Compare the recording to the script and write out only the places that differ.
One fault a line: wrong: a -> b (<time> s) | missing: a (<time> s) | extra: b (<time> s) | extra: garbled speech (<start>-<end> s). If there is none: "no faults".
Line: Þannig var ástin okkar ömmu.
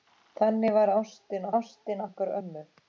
extra: ástin (1.5 s)